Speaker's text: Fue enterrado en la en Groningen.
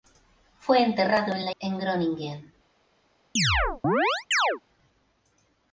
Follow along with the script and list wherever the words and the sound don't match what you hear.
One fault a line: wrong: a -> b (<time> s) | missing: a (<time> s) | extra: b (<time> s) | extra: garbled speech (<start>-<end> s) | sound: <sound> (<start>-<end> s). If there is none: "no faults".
sound: chirp (3.4-4.6 s)